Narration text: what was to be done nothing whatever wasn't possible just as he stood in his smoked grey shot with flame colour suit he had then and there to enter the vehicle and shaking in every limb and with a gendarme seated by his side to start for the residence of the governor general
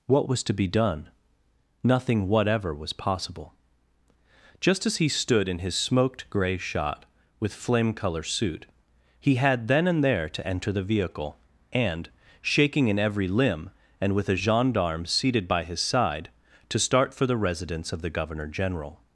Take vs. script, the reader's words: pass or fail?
fail